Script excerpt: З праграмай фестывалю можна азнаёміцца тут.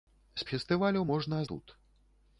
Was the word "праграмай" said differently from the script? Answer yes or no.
yes